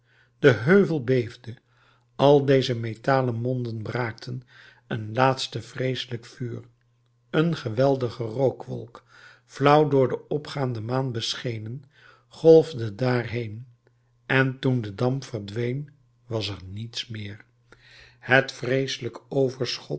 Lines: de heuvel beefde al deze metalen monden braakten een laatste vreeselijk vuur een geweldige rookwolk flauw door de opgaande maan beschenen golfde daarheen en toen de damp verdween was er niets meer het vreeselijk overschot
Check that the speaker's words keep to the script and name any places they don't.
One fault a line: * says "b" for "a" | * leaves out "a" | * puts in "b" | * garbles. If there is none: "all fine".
all fine